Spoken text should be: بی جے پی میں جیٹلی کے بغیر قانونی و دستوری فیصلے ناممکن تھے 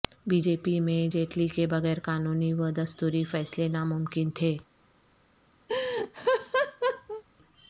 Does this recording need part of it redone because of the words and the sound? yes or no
yes